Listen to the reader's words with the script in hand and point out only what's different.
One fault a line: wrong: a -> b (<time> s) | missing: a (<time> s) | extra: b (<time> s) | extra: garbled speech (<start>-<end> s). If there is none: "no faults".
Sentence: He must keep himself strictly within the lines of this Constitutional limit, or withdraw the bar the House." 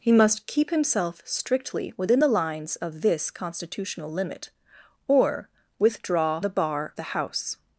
no faults